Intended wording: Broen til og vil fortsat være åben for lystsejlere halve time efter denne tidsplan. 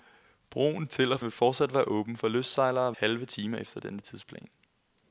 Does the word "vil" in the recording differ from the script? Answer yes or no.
no